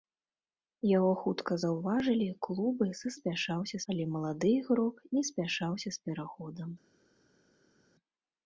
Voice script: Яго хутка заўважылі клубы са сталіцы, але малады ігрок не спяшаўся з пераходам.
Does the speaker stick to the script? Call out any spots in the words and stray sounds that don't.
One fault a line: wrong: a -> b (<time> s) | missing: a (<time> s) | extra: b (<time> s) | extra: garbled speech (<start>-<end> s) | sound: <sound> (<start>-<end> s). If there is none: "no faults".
wrong: сталіцы -> спяшаўся (3.2 s)